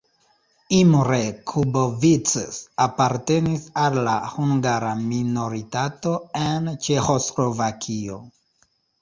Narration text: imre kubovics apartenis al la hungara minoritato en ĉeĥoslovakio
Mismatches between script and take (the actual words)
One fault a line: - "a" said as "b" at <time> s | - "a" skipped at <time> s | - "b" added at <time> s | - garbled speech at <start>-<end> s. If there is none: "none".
none